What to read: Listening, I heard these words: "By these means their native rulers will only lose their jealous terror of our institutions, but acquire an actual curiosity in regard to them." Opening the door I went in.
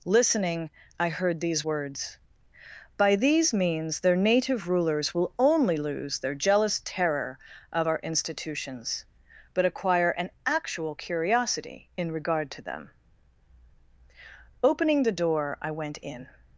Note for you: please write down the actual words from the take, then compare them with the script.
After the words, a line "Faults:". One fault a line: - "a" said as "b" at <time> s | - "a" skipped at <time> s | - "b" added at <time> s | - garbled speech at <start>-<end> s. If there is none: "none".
Listening, I heard these words: "By these means their native rulers will only lose their jealous terror of our institutions, but acquire an actual curiosity in regard to them." Opening the door I went in.
Faults:
none